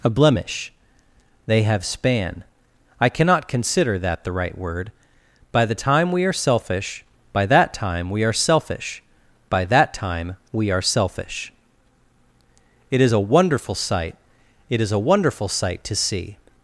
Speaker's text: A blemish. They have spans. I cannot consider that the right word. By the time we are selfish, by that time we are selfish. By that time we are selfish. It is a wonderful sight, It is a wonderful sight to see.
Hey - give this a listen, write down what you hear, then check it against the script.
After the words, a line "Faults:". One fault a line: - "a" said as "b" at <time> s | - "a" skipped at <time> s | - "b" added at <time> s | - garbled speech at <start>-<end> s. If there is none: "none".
A blemish. They have span. I cannot consider that the right word. By the time we are selfish, by that time we are selfish. By that time we are selfish. It is a wonderful sight, It is a wonderful sight to see.
Faults:
- "spans" said as "span" at 1.9 s